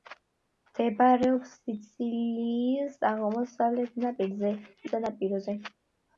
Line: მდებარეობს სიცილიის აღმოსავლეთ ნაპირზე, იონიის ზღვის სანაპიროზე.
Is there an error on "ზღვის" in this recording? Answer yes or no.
yes